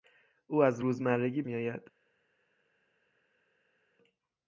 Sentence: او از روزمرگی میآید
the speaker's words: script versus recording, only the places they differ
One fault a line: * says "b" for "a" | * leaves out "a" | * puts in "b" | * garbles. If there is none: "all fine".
all fine